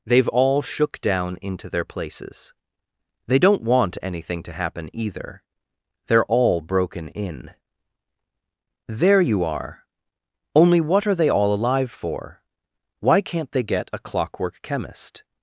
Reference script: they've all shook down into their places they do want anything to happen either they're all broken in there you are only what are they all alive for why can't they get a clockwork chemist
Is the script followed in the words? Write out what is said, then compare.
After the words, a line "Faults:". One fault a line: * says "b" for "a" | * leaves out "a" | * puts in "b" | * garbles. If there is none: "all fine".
they've all shook down into their places they don't want anything to happen either they're all broken in there you are only what are they all alive for why can't they get a clockwork chemist
Faults:
* says "don't" for "do"